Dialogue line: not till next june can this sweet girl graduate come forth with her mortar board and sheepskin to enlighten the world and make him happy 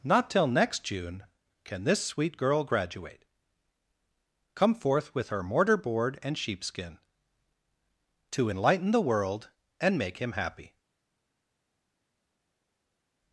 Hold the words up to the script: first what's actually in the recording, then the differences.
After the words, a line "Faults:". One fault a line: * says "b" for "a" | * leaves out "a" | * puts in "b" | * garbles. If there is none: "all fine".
not till next june can this sweet girl graduate come forth with her mortar board and sheepskin to enlighten the world and make him happy
Faults:
all fine